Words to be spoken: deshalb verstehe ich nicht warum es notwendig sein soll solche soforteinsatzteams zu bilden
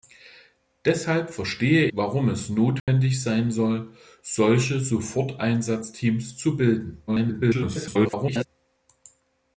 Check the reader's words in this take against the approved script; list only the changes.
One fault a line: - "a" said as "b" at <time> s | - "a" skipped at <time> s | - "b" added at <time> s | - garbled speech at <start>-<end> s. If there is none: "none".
- "ich nicht" skipped at 1.9 s
- garbled speech at 7.1-8.5 s